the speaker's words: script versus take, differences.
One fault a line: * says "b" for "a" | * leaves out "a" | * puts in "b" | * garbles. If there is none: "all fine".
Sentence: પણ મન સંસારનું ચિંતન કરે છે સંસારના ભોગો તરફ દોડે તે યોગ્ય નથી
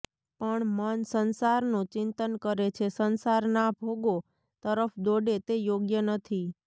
all fine